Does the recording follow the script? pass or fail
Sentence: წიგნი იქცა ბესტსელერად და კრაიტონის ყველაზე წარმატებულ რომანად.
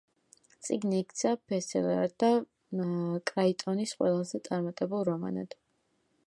pass